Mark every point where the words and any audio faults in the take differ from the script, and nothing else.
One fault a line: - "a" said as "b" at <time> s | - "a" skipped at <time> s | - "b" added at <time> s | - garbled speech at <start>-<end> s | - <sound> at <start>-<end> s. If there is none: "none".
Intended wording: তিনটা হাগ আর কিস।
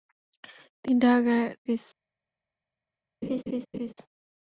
- laugh at 3.2-3.9 s